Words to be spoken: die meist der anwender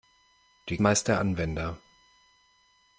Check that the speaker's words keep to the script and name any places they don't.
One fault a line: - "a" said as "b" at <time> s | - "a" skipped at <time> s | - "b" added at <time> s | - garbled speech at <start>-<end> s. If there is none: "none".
none